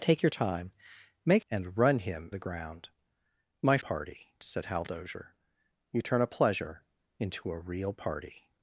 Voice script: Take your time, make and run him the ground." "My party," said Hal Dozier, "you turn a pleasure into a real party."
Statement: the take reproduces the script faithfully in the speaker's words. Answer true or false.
true